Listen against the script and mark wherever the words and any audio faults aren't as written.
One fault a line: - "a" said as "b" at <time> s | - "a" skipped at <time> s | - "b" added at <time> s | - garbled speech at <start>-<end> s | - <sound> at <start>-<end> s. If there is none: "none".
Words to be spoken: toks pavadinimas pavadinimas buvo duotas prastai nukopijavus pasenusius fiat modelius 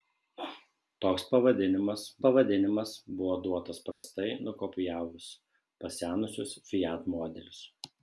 - dropout at 3.9-4.0 s